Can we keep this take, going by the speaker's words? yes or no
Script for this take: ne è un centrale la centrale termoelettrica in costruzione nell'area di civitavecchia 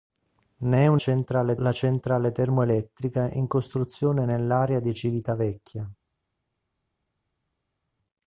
yes